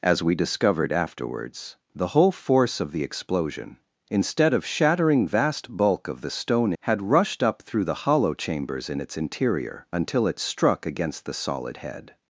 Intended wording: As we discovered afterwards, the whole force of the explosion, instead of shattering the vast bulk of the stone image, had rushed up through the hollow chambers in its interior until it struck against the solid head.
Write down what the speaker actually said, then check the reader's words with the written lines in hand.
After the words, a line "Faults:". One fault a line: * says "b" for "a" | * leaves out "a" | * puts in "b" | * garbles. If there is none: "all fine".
As we discovered afterwards, the whole force of the explosion, instead of shattering vast bulk of the stone had rushed up through the hollow chambers in its interior until it struck against the solid head.
Faults:
* leaves out "the"
* leaves out "image"